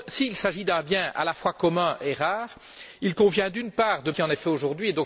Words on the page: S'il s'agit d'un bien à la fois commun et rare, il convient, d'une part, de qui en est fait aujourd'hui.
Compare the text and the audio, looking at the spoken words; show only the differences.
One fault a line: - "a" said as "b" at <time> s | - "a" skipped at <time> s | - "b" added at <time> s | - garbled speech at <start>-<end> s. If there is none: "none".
none